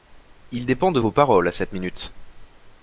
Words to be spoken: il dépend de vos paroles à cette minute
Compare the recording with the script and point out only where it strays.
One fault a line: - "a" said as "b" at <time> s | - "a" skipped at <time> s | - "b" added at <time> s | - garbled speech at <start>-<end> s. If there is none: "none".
none